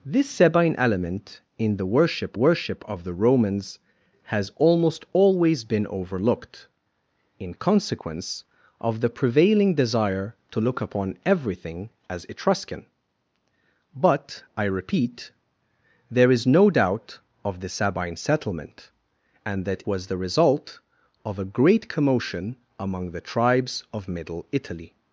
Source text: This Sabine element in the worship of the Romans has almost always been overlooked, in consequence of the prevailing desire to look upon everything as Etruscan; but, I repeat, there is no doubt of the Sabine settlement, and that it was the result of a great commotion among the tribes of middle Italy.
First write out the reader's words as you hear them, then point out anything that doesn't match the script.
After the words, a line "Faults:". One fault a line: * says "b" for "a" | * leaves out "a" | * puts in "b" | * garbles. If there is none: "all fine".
This Sabine element in the worship worship of the Romans has almost always been overlooked, in consequence of the prevailing desire to look upon everything as Etruscan; but, I repeat, there is no doubt of the Sabine settlement, and that was the result of a great commotion among the tribes of middle Italy.
Faults:
* puts in "worship"
* leaves out "it"